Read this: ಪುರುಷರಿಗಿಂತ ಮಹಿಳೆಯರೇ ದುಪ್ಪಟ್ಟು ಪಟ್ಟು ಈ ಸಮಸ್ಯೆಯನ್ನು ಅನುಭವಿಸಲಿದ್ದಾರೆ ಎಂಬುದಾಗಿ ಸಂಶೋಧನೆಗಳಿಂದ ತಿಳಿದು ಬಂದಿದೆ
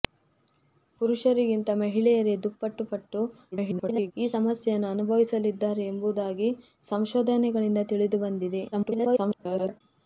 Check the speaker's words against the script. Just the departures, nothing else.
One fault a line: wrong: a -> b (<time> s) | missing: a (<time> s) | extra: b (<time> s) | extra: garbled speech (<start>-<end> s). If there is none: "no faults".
extra: garbled speech (3.5-4.1 s)
extra: garbled speech (8.7-9.8 s)